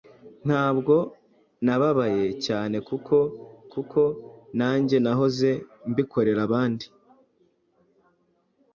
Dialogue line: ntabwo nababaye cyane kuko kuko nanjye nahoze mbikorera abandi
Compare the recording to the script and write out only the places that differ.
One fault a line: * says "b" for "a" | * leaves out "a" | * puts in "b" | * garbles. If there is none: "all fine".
all fine